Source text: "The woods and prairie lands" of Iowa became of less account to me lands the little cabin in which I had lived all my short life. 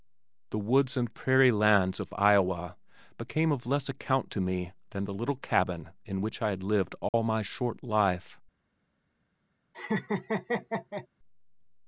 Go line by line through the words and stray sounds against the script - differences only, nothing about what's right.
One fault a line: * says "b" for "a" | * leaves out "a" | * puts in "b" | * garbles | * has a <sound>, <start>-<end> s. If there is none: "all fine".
* says "than" for "lands"
* has a dropout, 7.1-7.1 s
* has a laugh, 9.7-11.1 s